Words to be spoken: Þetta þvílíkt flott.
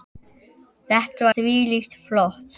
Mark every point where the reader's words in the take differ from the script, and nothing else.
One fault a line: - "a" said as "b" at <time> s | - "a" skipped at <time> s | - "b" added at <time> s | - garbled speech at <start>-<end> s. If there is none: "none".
none